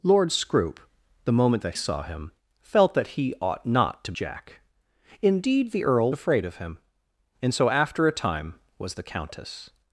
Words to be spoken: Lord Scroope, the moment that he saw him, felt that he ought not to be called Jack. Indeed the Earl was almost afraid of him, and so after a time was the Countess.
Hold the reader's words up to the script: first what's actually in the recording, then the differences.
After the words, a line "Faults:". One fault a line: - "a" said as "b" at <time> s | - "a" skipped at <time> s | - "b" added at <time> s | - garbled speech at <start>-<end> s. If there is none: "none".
Lord Scroope, the moment that saw him, felt that he ought not to Jack. Indeed the Earl afraid of him, and so after a time was the Countess.
Faults:
- "he" skipped at 1.8 s
- "be called" skipped at 4.1 s
- "was almost" skipped at 6.1 s